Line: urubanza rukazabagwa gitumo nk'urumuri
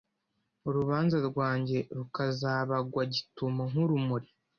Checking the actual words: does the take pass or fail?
fail